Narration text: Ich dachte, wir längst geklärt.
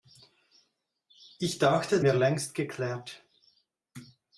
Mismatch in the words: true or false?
false